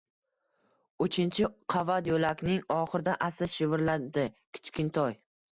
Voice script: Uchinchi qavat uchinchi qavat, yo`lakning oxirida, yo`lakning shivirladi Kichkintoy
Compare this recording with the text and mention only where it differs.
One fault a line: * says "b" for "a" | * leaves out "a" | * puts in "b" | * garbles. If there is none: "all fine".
* leaves out "uchinchi qavat"
* says "asta" for "yo`lakning"